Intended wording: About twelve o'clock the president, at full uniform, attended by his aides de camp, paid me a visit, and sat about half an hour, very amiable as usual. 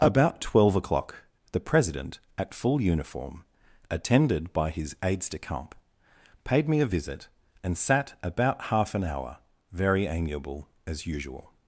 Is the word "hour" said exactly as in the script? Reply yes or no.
yes